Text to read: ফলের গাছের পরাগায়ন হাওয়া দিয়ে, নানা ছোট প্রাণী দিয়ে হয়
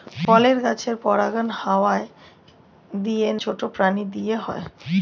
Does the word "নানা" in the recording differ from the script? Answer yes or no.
yes